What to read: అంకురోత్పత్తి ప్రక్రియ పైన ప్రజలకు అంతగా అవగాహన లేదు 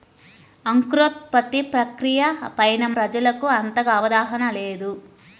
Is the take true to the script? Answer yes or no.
yes